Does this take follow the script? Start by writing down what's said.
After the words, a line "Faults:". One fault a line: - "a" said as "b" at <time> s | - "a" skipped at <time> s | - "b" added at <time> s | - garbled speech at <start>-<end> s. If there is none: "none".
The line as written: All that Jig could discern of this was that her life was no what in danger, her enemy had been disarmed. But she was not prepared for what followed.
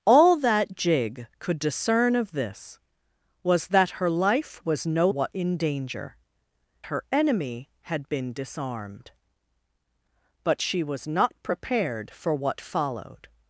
All that Jig could discern of this was that her life was no what in danger, her enemy had been disarmed. But she was not prepared for what followed.
Faults:
none